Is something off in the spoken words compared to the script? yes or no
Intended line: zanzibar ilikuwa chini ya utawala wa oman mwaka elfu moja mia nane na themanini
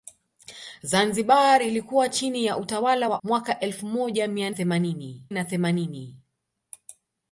yes